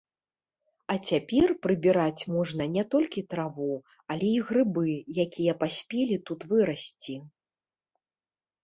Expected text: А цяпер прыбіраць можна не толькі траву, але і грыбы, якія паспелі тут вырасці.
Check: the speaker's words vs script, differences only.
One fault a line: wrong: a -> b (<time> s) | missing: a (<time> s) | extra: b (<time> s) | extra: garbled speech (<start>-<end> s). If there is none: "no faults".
no faults